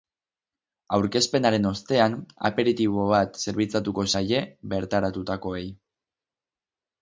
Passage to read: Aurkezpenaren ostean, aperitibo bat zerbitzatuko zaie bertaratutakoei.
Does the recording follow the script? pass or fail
pass